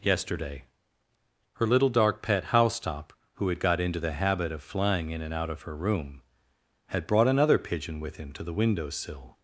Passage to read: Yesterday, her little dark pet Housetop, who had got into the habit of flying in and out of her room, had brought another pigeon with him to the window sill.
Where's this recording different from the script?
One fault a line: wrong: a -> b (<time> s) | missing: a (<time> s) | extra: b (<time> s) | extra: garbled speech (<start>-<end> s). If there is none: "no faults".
no faults